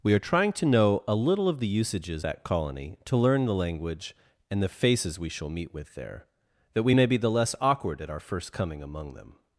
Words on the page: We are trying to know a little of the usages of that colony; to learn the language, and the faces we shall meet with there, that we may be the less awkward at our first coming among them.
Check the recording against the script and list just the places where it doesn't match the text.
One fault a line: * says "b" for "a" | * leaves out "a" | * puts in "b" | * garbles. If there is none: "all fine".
* leaves out "of"